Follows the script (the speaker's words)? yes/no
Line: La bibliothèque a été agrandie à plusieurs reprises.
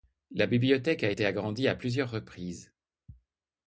yes